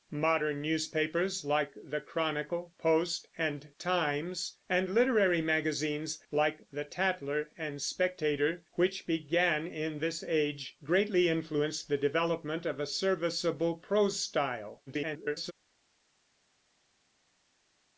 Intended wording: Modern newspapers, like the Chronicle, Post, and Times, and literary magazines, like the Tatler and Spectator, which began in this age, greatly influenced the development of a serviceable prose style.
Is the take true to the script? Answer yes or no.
no